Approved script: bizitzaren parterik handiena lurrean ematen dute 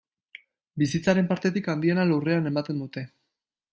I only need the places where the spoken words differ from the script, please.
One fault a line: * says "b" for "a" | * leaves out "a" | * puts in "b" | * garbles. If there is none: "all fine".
all fine